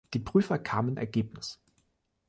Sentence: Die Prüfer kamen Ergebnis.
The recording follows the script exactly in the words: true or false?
true